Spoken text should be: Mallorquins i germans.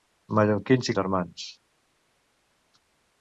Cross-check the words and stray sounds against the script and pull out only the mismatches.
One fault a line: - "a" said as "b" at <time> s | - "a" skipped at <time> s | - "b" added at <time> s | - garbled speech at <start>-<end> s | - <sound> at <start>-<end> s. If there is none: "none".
none